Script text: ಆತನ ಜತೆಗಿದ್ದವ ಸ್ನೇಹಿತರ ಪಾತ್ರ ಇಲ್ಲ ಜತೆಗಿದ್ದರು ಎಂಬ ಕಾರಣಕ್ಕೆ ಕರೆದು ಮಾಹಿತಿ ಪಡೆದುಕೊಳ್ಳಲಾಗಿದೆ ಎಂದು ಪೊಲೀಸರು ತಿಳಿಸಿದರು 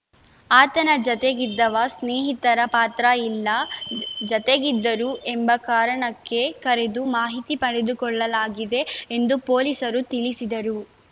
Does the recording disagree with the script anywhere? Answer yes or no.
no